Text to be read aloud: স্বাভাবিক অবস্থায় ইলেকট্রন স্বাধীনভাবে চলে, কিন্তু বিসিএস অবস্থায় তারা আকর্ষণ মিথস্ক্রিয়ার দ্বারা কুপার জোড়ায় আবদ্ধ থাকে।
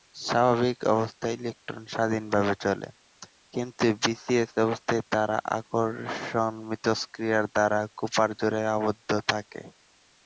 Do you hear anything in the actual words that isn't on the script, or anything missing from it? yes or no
no